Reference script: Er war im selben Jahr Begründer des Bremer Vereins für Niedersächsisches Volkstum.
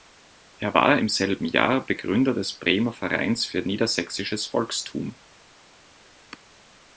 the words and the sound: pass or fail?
pass